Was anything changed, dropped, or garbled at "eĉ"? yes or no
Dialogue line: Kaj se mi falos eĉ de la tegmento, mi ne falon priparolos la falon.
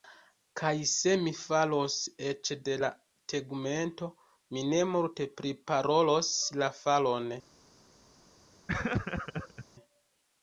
no